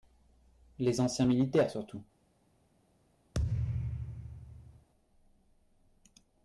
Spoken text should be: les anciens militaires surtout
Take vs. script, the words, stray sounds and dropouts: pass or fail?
fail